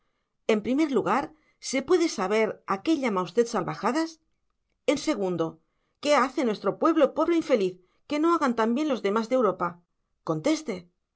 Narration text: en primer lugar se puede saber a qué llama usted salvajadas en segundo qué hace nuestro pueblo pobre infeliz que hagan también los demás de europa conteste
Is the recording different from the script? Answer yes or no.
yes